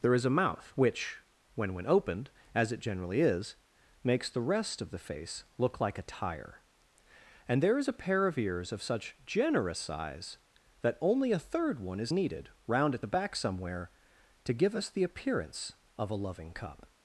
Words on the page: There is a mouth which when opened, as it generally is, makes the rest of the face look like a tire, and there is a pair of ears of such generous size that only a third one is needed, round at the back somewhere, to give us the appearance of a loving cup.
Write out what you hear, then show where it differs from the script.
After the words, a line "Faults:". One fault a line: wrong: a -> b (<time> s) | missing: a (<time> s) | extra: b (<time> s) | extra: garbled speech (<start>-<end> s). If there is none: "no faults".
There is a mouth which when when opened, as it generally is, makes the rest of the face look like a tire, and there is a pair of ears of such generous size that only a third one is needed, round at the back somewhere, to give us the appearance of a loving cup.
Faults:
extra: when (1.8 s)